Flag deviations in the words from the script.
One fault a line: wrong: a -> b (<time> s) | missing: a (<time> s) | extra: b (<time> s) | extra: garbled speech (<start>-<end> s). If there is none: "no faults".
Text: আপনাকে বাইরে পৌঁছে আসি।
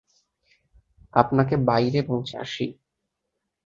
no faults